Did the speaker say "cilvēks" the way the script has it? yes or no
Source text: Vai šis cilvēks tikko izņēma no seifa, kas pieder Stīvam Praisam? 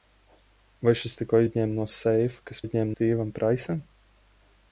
no